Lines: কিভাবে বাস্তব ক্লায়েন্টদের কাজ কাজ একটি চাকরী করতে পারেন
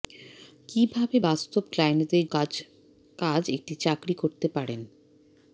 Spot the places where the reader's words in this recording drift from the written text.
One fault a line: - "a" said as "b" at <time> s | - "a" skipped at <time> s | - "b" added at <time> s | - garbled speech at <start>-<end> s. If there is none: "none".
none